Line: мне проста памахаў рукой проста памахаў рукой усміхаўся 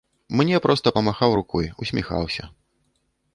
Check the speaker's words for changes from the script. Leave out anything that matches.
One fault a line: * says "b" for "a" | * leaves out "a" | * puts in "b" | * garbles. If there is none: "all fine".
* leaves out "проста памахаў рукой"